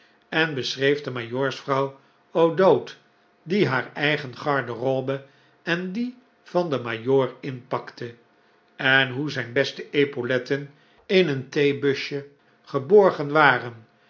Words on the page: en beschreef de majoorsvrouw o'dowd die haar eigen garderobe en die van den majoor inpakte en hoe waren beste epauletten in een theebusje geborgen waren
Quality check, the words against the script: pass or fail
fail